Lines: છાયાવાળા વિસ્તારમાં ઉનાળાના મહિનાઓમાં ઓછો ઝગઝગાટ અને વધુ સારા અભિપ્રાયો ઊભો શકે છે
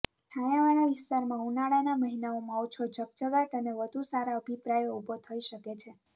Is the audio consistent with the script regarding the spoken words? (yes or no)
no